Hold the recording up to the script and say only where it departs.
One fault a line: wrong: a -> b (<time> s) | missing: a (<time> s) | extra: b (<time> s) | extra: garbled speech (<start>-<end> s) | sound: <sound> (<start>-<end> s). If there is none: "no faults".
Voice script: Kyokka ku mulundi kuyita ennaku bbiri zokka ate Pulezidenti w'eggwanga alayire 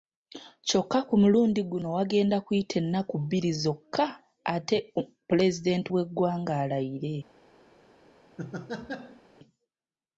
extra: guno wagenda (1.7 s)
sound: laugh (8.4-9.2 s)